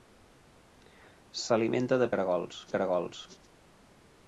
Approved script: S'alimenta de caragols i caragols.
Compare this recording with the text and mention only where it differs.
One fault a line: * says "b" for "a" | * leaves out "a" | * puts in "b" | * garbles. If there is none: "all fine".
all fine